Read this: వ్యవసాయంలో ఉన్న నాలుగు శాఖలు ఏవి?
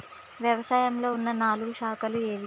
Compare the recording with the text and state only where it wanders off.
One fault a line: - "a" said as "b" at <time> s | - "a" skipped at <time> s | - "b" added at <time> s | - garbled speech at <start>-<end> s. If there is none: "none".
none